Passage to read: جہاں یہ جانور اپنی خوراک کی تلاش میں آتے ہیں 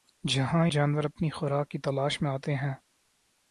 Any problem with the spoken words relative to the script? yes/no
yes